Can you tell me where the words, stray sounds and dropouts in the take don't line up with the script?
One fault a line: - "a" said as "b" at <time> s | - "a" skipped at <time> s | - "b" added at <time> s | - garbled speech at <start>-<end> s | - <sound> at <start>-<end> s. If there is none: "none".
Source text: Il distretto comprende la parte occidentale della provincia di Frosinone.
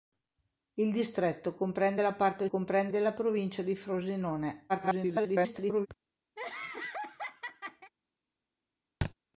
- "occidentale" said as "comprende" at 2.5 s
- garbled speech at 4.7-5.9 s
- laugh at 6.4-7.9 s
- thud at 9.0-9.1 s